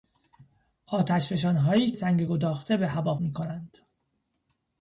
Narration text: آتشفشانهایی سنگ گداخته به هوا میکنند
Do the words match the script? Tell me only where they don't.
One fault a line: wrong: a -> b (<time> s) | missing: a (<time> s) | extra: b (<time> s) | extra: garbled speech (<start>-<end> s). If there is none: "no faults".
no faults